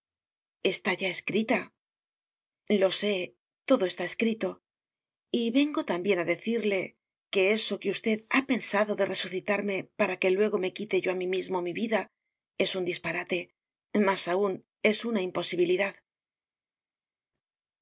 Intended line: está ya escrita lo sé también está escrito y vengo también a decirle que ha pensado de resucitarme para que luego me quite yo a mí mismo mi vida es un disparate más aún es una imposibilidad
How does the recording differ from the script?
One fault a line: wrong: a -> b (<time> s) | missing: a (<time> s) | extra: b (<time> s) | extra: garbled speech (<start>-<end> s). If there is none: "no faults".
wrong: también -> todo (3.7 s)
extra: eso que usted (7.6 s)